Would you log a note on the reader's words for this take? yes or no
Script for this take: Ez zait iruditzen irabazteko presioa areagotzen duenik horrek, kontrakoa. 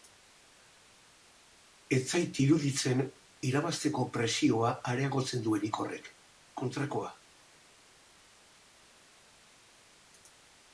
no